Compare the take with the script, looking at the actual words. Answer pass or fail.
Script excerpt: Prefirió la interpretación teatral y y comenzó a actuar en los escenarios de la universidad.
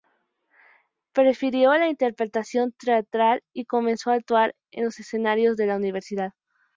fail